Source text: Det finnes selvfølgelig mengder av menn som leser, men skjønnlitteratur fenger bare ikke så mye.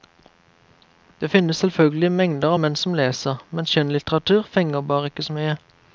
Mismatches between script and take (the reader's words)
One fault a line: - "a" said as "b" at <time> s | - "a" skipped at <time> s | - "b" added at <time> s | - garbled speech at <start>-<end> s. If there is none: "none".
none